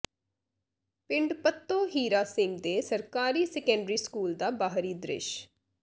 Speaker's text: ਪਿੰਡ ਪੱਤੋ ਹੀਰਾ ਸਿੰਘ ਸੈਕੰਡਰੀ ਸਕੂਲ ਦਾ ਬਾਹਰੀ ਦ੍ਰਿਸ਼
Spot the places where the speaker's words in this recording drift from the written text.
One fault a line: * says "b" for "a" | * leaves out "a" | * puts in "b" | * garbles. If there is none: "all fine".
* puts in "ਦੇ ਸਰਕਾਰੀ"